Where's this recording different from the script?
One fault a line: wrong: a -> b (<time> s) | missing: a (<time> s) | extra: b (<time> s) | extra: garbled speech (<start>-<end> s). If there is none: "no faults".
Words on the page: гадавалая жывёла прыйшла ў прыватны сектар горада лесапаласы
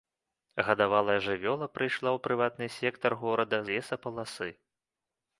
no faults